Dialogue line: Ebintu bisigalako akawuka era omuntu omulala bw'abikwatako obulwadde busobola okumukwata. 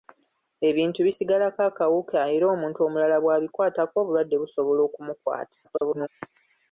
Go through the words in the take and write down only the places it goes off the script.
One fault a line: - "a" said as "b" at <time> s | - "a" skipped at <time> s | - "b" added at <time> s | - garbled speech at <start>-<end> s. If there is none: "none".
- garbled speech at 5.6-6.1 s